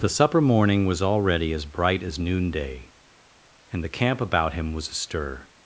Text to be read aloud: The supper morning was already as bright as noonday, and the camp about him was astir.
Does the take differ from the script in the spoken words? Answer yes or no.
no